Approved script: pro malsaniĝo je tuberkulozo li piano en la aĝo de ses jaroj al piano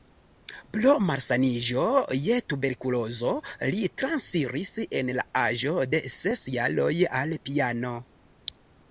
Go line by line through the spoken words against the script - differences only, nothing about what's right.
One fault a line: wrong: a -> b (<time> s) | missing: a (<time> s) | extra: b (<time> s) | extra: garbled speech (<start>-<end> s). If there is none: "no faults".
wrong: piano -> transiris (4.0 s)